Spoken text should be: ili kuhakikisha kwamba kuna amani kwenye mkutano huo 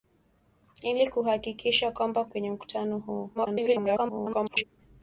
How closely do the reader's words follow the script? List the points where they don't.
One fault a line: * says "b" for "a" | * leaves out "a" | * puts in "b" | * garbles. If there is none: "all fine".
* leaves out "kuna amani"
* garbles